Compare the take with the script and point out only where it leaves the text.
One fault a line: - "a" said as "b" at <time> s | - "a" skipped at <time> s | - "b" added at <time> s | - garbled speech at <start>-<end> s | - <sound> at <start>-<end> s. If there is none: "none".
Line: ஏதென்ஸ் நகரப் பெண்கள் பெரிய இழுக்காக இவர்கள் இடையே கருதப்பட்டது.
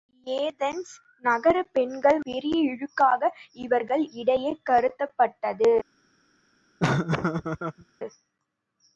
- laugh at 6.8-7.8 s